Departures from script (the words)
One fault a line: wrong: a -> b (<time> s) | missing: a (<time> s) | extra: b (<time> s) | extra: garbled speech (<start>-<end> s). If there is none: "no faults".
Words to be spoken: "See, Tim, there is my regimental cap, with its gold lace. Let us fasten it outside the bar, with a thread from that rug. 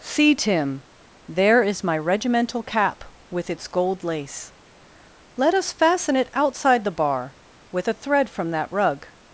no faults